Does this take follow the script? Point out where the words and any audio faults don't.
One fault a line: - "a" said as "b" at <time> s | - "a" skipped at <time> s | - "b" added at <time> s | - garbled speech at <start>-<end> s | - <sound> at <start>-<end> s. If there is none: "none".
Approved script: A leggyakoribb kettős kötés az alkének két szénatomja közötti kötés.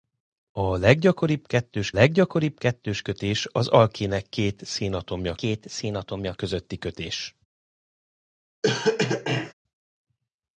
- "leggyakoribb kettős" added at 1.9 s
- "két szénatomja" added at 5.3 s
- cough at 8.6-9.5 s